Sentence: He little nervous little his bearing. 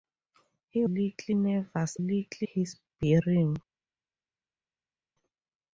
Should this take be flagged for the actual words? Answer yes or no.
no